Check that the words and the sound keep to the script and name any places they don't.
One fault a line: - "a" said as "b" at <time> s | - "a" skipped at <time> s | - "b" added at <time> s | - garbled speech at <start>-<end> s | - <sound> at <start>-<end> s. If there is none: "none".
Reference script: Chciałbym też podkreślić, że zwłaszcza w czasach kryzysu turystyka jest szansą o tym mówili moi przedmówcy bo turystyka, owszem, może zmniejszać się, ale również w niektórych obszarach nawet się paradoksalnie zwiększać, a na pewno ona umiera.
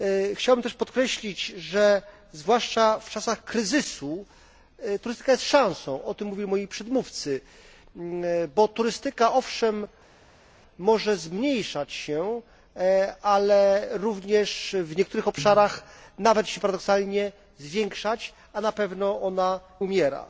none